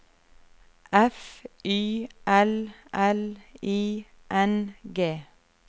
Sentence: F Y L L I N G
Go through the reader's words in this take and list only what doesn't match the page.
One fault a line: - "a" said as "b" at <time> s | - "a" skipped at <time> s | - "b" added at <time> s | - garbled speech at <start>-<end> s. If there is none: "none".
none